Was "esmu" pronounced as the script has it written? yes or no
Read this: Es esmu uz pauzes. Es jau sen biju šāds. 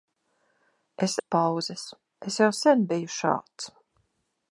no